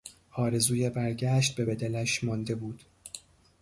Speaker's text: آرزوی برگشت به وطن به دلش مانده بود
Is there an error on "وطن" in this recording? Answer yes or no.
yes